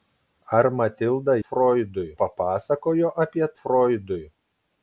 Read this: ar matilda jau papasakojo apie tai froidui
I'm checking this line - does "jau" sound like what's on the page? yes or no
no